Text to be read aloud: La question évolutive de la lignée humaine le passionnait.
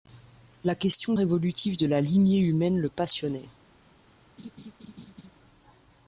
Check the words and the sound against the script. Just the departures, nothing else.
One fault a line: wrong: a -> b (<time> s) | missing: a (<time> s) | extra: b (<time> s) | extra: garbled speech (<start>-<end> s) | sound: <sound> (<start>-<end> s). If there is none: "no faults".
sound: laugh (4.4-5.3 s)